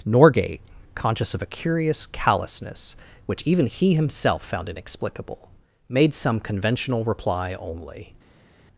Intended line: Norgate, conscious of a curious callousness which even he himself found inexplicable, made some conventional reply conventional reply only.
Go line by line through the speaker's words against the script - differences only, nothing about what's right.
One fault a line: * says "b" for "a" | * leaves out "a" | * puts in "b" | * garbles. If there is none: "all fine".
* leaves out "conventional reply"